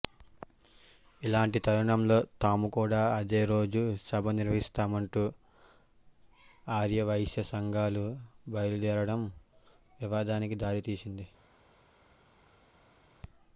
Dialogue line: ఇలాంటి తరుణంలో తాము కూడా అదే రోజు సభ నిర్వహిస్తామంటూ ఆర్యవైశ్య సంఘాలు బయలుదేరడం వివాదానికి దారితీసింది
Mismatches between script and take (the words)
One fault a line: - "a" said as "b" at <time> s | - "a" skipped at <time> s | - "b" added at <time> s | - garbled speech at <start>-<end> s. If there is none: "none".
none